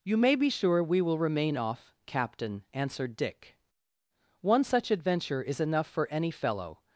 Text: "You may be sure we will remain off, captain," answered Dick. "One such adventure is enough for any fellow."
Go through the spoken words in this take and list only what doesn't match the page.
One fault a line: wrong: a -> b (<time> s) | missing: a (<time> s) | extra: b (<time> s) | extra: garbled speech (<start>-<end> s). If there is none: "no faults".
no faults